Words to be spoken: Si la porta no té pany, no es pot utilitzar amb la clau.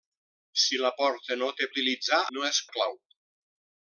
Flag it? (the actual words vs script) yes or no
yes